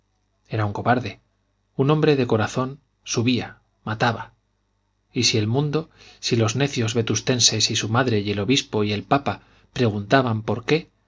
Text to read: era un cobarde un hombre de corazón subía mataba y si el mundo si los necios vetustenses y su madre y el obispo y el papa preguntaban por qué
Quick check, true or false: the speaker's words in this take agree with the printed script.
true